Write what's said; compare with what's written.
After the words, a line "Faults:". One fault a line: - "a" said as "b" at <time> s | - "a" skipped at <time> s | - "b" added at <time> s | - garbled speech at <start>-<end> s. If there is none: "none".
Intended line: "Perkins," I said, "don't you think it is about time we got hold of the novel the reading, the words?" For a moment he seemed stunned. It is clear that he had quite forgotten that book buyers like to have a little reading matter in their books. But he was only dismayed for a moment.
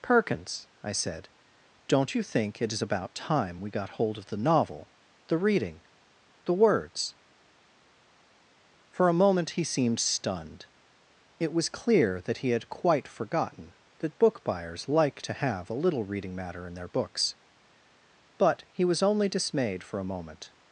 "Perkins," I said, "don't you think it is about time we got hold of the novel the reading, the words?" For a moment he seemed stunned. It was clear that he had quite forgotten that book buyers like to have a little reading matter in their books. But he was only dismayed for a moment.
Faults:
- "is" said as "was" at 11.5 s